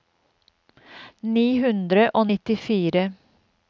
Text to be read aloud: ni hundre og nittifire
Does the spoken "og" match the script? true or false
true